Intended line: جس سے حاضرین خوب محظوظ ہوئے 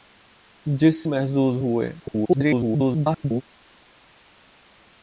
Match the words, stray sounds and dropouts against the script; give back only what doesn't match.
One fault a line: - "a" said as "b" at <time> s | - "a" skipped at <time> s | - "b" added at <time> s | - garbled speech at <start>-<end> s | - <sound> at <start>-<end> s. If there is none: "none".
- "سے حاضرین خوب" skipped at 1.0 s
- garbled speech at 2.0-3.4 s